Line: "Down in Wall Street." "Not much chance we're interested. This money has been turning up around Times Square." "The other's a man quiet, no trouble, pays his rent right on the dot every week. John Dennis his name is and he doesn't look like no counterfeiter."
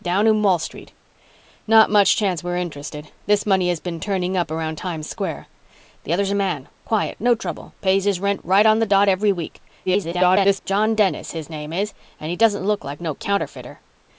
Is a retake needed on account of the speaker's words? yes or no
yes